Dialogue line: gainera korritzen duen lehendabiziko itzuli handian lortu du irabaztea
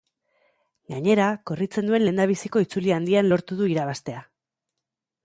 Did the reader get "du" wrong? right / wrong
right